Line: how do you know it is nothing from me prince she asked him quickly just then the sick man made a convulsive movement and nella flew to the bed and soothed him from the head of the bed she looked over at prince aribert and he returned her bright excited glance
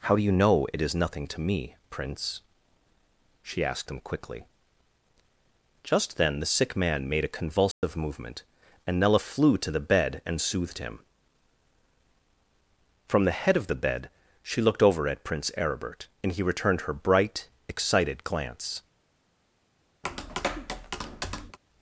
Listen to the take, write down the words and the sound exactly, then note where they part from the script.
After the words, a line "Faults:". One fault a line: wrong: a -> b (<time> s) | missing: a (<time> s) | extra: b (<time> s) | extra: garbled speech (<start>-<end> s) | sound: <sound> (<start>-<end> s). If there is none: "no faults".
how do you know it is nothing to me prince she asked him quickly just then the sick man made a convulsive movement and nella flew to the bed and soothed him from the head of the bed she looked over at prince aribert and he returned her bright excited glance
Faults:
wrong: from -> to (1.3 s)
sound: dropout (7.7-7.8 s)
sound: tap (20.0-21.6 s)